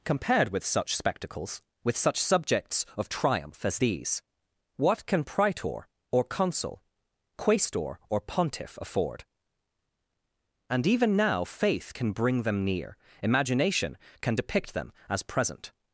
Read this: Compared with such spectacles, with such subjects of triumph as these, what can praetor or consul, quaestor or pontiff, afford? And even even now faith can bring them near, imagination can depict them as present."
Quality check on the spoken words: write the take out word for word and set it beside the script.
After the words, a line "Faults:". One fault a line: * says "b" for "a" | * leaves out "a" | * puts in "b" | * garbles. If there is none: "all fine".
Compared with such spectacles, with such subjects of triumph as these, what can praetor or consul, quaestor or pontiff, afford? And even now faith can bring them near, imagination can depict them as present."
Faults:
* leaves out "even"